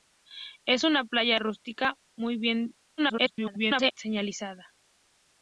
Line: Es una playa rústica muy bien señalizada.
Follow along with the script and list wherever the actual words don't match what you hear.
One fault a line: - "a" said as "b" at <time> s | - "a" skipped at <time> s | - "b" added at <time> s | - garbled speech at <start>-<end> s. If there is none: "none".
- garbled speech at 3.0-3.9 s